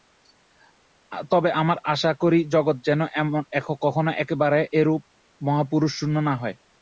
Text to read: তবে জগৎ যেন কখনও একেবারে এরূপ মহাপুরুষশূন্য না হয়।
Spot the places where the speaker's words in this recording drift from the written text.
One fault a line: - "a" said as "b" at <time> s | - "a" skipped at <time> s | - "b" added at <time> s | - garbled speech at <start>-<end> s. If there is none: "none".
- "আমরা আশা করি" added at 1.6 s